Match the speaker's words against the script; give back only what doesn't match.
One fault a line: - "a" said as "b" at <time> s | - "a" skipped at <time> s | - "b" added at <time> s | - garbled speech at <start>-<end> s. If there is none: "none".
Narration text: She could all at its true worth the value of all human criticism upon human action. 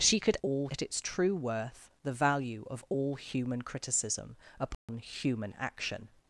none